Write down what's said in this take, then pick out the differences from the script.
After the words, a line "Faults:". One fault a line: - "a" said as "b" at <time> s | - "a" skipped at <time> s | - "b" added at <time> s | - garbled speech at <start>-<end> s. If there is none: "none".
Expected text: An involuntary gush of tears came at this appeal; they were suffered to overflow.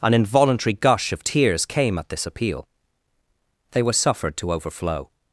An involuntary gush of tears came at this appeal; they were suffered to overflow.
Faults:
none